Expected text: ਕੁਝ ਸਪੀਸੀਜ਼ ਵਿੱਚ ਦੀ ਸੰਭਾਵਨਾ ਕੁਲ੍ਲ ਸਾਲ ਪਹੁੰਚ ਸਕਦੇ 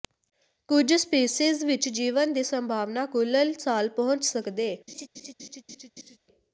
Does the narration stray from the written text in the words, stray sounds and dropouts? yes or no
yes